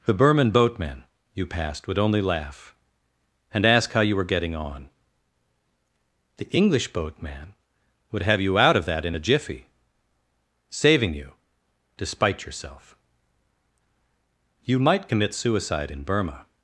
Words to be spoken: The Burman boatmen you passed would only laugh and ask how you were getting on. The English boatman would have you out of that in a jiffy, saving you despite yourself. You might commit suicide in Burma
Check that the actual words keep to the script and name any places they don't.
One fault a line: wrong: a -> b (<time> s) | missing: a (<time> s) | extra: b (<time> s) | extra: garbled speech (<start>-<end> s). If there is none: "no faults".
no faults